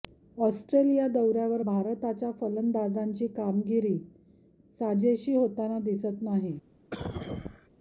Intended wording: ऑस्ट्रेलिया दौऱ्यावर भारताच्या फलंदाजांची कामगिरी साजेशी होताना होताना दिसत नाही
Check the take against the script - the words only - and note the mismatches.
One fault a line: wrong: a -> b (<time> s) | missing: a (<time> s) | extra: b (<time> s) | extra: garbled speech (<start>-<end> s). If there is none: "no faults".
missing: होताना (5.8 s)